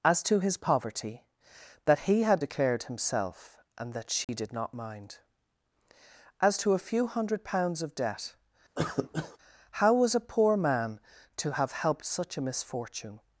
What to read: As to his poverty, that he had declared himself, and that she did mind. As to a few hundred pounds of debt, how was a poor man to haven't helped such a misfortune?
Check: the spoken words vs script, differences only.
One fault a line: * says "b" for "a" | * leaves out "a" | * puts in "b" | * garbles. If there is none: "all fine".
* puts in "not"
* says "have" for "haven't"